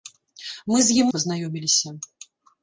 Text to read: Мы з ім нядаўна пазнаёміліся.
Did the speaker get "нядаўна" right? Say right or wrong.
wrong